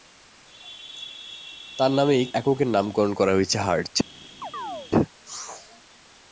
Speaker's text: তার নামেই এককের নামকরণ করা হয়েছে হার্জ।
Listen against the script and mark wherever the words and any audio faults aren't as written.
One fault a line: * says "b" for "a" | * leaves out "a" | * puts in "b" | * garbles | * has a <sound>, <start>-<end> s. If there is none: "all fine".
* has a chirp, 4.4-4.9 s